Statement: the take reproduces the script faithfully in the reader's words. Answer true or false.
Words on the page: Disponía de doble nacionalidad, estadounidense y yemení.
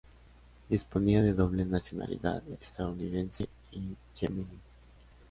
true